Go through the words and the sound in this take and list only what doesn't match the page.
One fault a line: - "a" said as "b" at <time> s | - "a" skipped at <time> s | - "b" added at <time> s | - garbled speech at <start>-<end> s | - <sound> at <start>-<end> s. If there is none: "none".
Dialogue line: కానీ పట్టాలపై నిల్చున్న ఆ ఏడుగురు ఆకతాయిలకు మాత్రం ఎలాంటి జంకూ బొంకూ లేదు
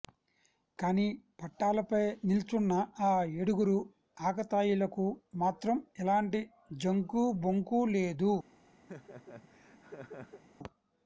- laugh at 8.9-10.4 s